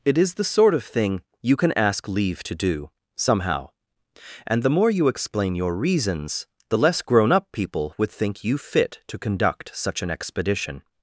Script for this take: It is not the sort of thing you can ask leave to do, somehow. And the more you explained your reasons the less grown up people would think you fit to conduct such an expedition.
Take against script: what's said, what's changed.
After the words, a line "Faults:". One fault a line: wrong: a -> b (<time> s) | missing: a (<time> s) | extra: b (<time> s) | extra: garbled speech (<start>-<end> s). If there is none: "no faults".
It is the sort of thing you can ask leave to do, somehow. And the more you explain your reasons the less grown up people would think you fit to conduct such an expedition.
Faults:
missing: not (0.3 s)
wrong: explained -> explain (5.1 s)